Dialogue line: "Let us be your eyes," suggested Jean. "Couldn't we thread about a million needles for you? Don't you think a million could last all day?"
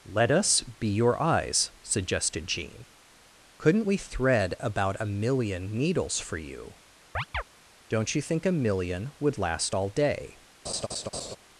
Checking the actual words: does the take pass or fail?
fail